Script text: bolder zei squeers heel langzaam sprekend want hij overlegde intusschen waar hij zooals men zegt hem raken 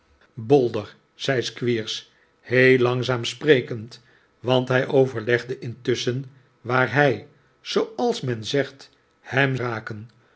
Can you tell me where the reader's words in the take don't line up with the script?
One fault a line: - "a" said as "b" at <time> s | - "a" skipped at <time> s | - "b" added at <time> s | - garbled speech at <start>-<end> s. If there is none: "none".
none